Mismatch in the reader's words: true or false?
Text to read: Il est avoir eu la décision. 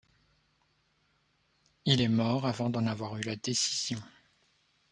true